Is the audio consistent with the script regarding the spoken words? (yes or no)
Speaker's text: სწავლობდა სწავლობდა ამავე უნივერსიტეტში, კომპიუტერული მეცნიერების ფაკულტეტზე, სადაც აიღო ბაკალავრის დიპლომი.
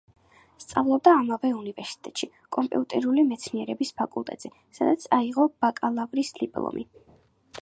no